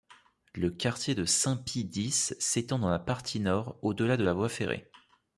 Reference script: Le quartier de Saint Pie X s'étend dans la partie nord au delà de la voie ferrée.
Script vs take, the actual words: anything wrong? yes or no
no